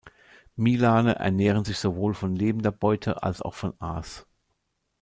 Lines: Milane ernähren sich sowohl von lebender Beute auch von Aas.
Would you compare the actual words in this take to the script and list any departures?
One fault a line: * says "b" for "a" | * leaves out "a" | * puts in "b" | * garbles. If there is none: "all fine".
* puts in "als"